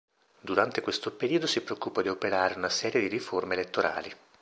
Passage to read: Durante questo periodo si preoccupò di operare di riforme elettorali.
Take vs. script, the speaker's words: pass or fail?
fail